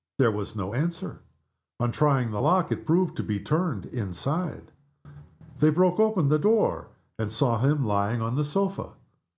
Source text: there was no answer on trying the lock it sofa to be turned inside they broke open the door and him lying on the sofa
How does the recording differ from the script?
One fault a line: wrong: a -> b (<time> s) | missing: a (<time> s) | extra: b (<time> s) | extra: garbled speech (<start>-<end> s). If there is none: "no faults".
wrong: sofa -> proved (2.8 s)
extra: saw (7.3 s)